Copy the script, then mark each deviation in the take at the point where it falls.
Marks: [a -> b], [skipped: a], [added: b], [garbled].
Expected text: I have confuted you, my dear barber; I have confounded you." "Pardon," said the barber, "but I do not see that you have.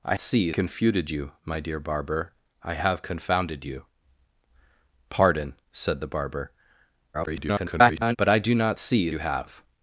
I [have -> see] confuted you, my dear barber; I have confounded you." "Pardon," said the barber, [garbled] "but I do not see [skipped: that] you have.